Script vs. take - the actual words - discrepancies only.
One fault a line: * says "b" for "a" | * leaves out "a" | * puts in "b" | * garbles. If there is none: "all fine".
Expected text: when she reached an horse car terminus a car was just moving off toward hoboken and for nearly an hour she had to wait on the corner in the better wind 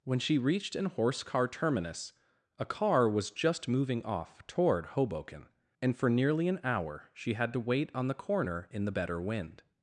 all fine